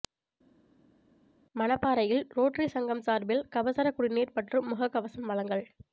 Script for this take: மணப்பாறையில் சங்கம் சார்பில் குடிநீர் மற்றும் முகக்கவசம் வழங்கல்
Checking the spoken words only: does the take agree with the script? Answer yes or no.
no